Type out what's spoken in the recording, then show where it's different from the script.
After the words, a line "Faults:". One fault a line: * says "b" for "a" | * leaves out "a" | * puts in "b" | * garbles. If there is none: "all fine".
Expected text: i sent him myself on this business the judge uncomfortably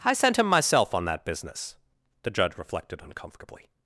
i sent him myself on that business the judge reflected uncomfortably
Faults:
* says "that" for "this"
* puts in "reflected"